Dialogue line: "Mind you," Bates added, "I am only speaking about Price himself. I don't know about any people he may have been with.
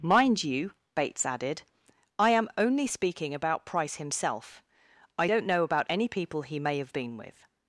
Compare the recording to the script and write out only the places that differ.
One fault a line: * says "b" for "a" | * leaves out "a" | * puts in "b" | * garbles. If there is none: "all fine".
all fine